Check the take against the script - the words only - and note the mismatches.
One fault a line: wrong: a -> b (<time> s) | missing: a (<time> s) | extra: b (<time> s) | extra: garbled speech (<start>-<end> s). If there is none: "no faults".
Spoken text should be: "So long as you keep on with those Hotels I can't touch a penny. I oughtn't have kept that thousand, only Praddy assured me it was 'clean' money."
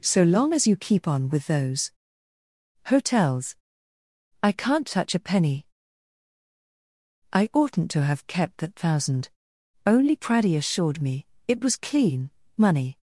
extra: to (7.9 s)